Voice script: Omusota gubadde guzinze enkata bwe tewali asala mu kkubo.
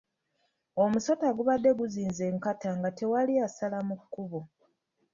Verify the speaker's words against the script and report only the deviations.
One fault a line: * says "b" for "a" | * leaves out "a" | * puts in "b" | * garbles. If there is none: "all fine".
* says "nga" for "bwe"